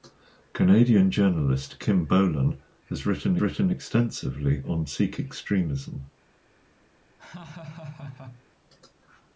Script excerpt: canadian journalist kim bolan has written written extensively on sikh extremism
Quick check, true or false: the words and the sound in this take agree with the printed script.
false